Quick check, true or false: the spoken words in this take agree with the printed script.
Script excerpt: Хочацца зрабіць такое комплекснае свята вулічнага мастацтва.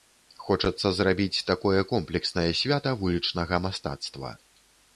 true